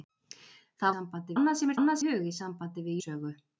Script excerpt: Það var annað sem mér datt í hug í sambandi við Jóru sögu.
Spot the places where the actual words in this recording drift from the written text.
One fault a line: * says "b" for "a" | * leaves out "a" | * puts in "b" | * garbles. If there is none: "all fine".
* says "sambandi" for "var"
* says "annað" for "datt"
* leaves out "Jóru"